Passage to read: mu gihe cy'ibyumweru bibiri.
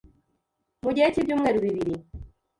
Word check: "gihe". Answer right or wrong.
right